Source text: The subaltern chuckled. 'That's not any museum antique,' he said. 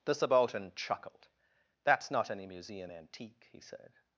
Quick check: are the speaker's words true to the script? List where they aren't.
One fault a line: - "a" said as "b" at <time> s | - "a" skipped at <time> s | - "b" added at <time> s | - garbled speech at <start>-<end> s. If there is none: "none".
none